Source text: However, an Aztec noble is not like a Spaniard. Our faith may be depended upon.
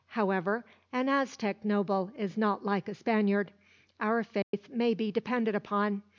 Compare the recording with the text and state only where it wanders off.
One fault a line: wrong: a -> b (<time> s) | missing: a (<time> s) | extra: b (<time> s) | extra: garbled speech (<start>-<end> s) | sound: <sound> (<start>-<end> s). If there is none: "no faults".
sound: dropout (4.4-4.5 s)